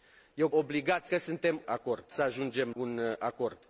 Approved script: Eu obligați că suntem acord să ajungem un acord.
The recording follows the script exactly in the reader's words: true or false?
true